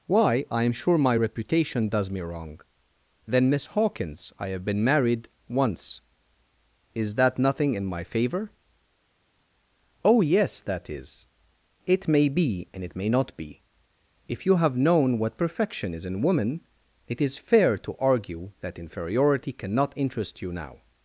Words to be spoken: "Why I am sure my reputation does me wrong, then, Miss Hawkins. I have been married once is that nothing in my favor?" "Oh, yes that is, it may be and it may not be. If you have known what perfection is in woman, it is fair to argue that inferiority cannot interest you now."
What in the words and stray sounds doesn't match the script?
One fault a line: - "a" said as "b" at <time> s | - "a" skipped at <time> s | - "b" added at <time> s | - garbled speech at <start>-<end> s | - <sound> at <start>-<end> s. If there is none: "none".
none